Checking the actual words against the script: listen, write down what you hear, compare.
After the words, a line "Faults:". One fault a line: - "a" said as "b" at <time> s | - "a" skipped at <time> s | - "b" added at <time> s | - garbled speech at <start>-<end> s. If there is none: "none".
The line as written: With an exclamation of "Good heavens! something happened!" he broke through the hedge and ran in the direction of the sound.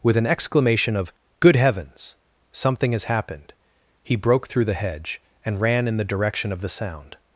With an exclamation of "Good heavens! something has happened!" he broke through the hedge and ran in the direction of the sound.
Faults:
- "has" added at 2.9 s